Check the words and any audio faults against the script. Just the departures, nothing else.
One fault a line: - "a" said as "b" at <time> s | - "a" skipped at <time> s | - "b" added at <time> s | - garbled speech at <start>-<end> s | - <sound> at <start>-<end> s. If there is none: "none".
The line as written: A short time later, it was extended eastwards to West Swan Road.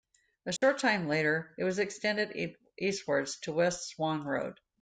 - dropout at 0.6-0.6 s